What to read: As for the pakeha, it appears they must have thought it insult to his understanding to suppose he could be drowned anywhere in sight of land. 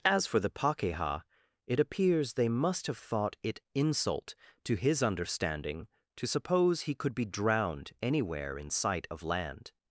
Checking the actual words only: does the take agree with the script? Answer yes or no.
yes